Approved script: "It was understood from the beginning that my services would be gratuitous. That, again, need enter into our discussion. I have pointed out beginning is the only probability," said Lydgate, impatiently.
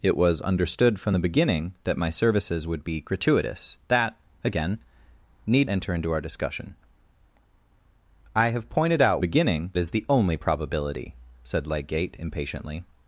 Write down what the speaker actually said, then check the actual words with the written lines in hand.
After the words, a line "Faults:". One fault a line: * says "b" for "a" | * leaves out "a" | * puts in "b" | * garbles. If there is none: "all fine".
"It was understood from the beginning that my services would be gratuitous. That, again, need enter into our discussion. I have pointed out beginning is the only probability," said Lydgate, impatiently.
Faults:
all fine